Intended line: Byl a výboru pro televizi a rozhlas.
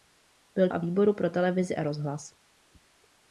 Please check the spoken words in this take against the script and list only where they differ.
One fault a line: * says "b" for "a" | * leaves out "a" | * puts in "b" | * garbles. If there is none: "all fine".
all fine